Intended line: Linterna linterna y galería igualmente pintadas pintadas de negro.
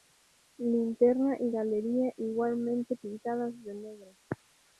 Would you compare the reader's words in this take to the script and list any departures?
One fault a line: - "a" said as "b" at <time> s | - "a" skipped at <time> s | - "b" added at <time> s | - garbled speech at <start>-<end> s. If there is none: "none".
- "linterna" skipped at 1.4 s
- "pintadas" skipped at 3.6 s